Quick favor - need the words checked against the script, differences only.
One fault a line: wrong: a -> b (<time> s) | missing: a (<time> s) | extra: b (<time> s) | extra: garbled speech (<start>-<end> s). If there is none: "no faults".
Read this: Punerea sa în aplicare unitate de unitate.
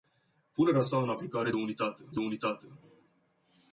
no faults